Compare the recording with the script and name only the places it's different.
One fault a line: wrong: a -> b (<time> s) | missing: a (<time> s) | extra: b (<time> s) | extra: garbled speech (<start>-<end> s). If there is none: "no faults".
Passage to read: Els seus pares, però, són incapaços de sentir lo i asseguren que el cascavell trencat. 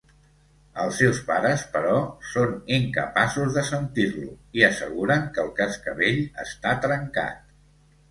extra: està (6.5 s)